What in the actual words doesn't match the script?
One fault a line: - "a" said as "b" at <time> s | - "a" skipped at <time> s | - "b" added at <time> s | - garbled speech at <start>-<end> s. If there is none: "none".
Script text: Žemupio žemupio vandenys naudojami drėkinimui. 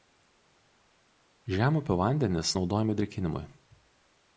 - "žemupio" skipped at 2.0 s